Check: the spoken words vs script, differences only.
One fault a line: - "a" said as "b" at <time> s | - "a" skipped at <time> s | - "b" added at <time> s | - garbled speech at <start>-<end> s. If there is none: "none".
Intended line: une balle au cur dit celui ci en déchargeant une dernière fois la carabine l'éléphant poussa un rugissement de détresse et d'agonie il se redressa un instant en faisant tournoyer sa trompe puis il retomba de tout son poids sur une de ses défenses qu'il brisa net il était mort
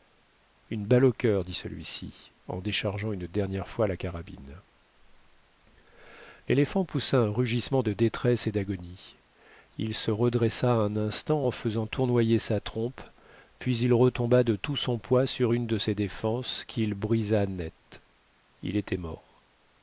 none